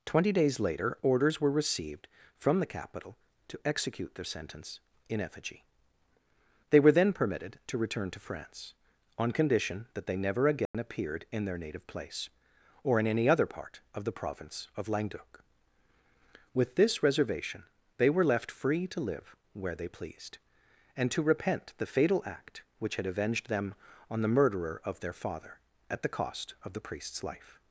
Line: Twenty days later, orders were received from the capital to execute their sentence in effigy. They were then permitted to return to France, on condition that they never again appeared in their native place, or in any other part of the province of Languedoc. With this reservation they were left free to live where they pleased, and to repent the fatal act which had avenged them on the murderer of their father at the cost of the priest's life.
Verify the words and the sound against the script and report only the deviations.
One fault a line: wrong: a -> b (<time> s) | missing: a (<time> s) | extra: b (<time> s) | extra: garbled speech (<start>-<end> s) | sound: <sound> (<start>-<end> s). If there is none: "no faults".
sound: dropout (10.7-10.7 s)